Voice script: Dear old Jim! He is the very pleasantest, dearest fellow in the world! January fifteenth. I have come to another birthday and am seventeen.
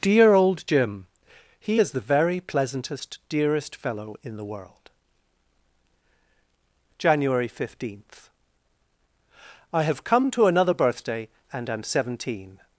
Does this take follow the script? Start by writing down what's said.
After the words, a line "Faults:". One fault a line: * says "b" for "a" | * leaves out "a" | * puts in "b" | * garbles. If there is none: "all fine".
Dear old Jim! He is the very pleasantest, dearest fellow in the world! January fifteenth. I have come to another birthday and am seventeen.
Faults:
all fine